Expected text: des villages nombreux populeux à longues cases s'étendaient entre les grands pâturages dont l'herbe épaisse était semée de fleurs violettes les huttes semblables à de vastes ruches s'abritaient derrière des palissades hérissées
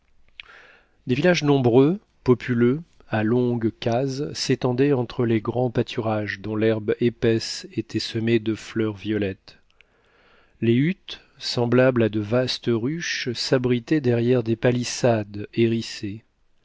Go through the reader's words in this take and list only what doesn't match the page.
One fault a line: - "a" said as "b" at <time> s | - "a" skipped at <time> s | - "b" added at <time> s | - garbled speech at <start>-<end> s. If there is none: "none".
none